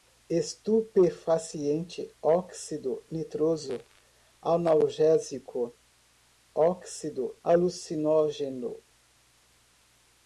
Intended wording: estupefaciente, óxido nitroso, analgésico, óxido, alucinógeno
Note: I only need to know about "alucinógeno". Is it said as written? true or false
true